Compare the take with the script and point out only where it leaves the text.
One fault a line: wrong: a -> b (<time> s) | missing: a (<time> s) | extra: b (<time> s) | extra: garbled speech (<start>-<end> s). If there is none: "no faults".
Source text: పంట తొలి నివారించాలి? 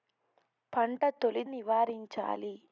no faults